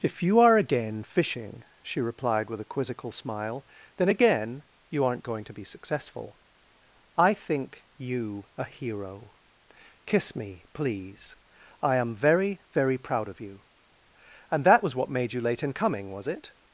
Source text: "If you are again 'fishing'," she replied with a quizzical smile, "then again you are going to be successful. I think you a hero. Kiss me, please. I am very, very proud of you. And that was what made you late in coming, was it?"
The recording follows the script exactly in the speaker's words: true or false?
false